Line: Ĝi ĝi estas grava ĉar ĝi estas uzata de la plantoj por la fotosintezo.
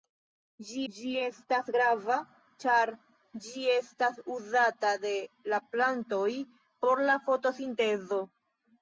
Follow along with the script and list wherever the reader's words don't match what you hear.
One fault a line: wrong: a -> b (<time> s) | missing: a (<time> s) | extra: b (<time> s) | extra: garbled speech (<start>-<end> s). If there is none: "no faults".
no faults